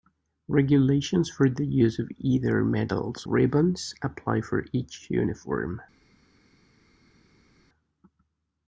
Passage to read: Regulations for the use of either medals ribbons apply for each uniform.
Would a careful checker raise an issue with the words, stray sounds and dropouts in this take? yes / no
no